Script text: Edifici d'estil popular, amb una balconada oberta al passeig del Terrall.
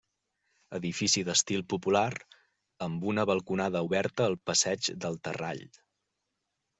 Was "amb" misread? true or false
false